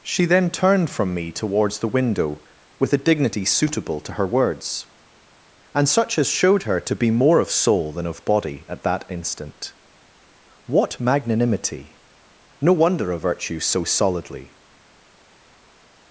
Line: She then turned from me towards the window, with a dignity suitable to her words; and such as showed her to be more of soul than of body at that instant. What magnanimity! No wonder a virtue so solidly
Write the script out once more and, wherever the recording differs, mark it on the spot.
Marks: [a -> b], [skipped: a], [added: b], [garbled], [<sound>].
She then turned from me towards the window, with a dignity suitable to her words; and such as showed her to be more of soul than of body at that instant. What magnanimity! No wonder a virtue so solidly